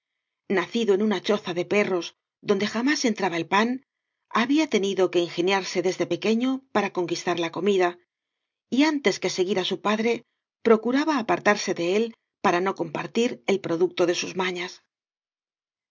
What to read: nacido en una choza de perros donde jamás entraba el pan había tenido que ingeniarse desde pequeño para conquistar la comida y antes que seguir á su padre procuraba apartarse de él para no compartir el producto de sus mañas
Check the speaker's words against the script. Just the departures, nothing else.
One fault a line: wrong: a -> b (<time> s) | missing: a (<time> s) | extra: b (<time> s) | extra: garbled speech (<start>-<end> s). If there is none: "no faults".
no faults